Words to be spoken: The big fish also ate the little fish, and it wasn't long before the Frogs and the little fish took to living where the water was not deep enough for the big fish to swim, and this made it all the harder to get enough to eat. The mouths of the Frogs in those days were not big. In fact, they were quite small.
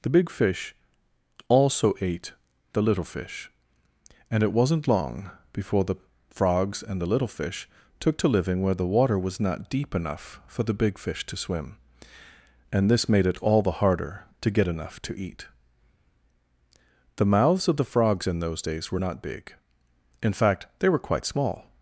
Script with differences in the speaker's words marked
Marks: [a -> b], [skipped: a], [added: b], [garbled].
The big fish also ate the little fish, and it wasn't long before the Frogs and the little fish took to living where the water was not deep enough for the big fish to swim, and this made it all the harder to get enough to eat. The mouths of the Frogs in those days were not big. In fact, they were quite small.